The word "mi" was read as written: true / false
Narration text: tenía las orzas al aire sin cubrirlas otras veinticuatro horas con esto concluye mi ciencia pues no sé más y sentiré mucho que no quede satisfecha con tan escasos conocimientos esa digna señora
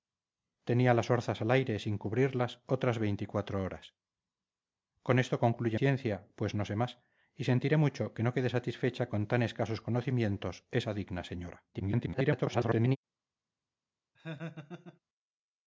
false